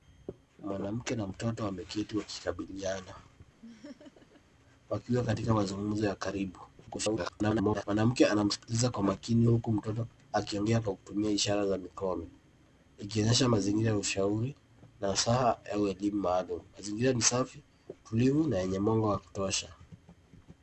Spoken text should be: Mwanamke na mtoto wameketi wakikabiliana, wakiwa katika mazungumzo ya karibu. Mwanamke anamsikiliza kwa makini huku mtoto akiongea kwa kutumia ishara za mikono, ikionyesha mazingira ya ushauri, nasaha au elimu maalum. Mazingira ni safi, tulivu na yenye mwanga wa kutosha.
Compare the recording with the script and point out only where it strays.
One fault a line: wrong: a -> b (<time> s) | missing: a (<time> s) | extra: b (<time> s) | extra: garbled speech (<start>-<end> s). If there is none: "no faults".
extra: garbled speech (6.9-7.8 s)